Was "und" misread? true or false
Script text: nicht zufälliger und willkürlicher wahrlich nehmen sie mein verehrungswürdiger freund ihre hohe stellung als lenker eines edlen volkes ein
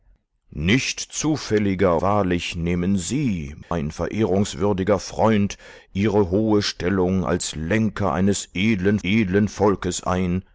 true